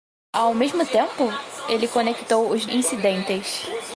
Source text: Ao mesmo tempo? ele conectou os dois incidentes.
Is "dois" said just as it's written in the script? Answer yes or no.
no